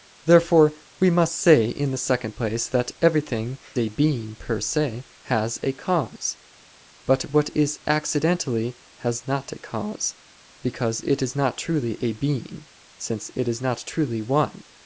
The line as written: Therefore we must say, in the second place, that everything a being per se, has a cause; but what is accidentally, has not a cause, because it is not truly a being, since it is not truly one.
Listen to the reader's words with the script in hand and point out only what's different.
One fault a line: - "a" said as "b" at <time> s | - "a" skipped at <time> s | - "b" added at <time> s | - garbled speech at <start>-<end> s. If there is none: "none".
none